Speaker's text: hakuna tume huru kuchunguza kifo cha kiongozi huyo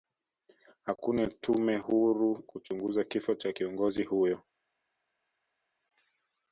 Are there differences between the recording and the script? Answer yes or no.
no